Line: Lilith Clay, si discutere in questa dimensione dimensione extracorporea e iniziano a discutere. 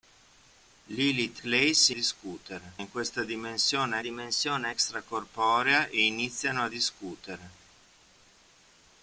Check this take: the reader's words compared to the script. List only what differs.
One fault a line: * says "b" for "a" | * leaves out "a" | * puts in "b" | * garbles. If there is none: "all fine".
all fine